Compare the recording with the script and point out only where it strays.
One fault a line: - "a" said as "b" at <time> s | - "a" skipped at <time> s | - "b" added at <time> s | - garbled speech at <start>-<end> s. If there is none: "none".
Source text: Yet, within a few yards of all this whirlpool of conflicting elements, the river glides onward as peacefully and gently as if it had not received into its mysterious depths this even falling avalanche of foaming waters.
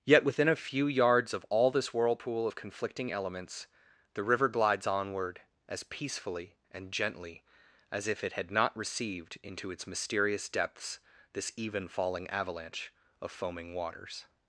none